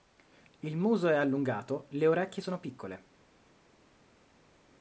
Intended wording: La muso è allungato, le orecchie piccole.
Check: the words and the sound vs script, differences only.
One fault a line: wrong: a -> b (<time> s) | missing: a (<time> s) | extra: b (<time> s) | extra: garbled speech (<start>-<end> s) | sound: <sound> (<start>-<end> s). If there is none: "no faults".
wrong: La -> Il (0.6 s)
extra: sono (2.4 s)